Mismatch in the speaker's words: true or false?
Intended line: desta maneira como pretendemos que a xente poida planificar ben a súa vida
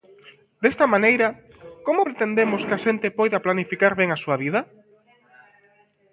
false